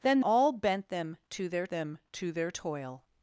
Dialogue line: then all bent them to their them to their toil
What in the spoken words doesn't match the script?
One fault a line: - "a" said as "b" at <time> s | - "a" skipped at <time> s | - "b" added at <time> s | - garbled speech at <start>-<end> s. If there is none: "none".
none